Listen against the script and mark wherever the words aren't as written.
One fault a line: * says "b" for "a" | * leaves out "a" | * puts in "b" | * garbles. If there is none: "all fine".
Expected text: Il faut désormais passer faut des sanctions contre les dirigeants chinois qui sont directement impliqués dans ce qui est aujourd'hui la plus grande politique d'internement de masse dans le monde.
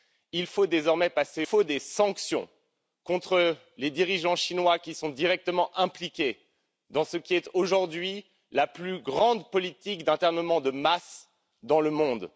all fine